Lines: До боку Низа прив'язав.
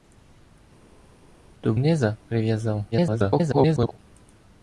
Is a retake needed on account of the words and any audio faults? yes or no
yes